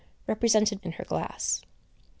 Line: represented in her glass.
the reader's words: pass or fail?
pass